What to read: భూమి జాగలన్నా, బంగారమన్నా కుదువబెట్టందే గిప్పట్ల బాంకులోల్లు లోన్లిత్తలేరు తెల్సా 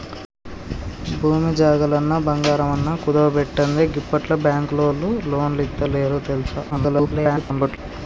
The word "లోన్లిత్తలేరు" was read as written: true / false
true